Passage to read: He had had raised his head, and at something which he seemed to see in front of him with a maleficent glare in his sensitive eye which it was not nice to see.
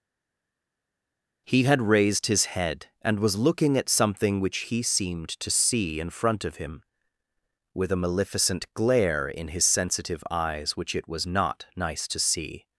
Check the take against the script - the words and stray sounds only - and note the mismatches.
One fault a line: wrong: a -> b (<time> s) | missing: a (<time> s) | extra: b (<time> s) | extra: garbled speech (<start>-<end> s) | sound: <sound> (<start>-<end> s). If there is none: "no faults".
missing: had (1.8 s)
extra: was looking (3.2 s)
wrong: eye -> eyes (10.3 s)